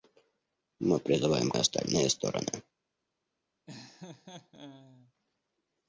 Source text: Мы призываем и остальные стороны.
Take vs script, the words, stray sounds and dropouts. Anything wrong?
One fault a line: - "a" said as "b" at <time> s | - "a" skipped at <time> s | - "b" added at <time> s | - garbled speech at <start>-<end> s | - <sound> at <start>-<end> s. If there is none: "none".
- laugh at 3.7-5.1 s